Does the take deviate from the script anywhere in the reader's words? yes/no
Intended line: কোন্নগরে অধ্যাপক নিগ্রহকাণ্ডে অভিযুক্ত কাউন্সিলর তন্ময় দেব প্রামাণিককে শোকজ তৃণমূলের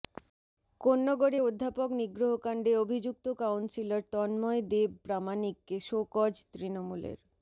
no